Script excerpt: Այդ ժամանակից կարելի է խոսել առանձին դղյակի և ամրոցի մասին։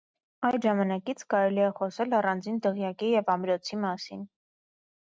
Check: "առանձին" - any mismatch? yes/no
no